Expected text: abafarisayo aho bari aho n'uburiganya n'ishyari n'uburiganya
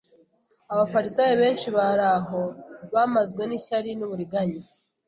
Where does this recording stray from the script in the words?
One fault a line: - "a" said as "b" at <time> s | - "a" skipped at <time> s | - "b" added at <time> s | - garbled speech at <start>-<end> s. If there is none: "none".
- "aho" said as "benshi" at 1.4 s
- "n'uburiganya" said as "bamazwe" at 2.9 s